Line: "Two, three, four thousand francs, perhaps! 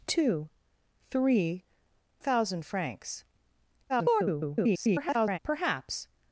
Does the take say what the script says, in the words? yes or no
no